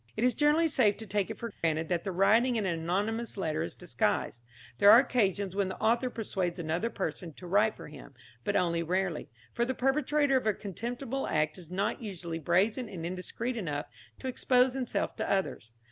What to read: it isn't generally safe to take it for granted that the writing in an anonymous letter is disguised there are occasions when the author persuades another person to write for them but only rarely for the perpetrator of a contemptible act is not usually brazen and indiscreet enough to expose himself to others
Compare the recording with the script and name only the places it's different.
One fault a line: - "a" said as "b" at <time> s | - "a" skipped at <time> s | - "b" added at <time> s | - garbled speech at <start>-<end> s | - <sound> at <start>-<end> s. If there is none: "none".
- "isn't" said as "is" at 0.2 s
- dropout at 1.5-1.6 s
- "them" said as "him" at 7.9 s